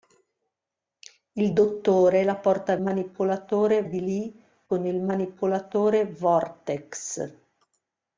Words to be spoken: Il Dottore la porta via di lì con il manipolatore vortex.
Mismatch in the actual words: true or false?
true